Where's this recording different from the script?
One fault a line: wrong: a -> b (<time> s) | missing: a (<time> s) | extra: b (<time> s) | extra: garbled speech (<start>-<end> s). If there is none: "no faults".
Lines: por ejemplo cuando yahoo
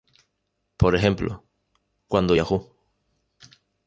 no faults